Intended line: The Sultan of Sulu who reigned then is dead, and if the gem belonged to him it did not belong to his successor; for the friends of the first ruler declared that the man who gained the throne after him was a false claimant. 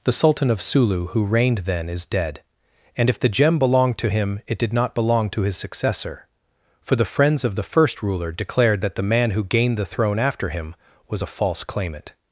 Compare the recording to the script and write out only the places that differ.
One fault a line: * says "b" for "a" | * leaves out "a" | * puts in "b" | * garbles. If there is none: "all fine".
all fine